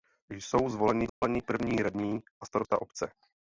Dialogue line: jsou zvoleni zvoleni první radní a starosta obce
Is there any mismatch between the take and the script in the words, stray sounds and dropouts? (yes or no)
yes